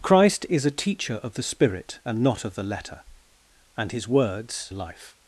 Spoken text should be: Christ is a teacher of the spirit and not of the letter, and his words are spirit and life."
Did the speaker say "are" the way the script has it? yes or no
no